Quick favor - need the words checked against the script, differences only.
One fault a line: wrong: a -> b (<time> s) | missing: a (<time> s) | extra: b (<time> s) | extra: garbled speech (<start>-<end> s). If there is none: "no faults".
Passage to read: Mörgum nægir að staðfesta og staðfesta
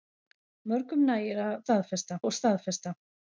no faults